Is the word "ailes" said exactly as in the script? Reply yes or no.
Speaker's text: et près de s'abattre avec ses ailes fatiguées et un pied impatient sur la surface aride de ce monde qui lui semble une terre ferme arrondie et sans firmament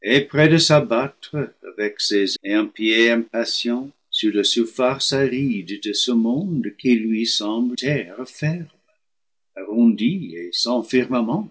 no